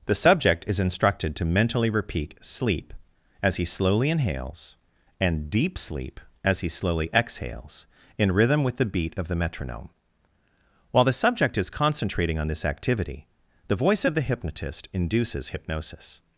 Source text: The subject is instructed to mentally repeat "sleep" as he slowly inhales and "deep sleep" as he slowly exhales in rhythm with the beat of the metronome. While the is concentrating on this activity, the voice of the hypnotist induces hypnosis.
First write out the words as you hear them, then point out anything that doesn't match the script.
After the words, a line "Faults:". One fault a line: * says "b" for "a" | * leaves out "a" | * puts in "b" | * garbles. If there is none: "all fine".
The subject is instructed to mentally repeat "sleep" as he slowly inhales and "deep sleep" as he slowly exhales in rhythm with the beat of the metronome. While the subject is concentrating on this activity, the voice of the hypnotist induces hypnosis.
Faults:
* puts in "subject"